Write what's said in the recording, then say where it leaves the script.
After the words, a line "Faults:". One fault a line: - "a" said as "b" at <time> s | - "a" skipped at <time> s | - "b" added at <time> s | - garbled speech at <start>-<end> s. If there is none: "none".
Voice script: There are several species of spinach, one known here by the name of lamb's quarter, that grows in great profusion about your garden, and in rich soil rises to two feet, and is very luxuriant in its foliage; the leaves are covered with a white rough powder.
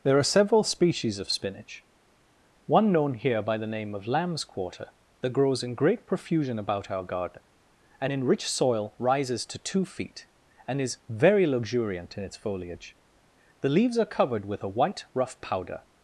There are several species of spinach, one known here by the name of lamb's quarter, that grows in great profusion about our garden, and in rich soil rises to two feet, and is very luxuriant in its foliage; the leaves are covered with a white rough powder.
Faults:
- "your" said as "our" at 6.9 s